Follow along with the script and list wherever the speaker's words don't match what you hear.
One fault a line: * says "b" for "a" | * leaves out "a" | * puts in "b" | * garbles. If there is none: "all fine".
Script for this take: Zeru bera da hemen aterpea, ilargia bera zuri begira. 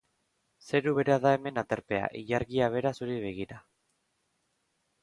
all fine